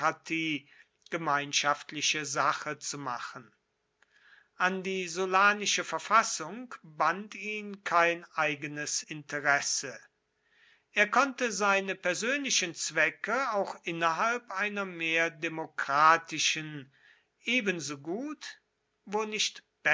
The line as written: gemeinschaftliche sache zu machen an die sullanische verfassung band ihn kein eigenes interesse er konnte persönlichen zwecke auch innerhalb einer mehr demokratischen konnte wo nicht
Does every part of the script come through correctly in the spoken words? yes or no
no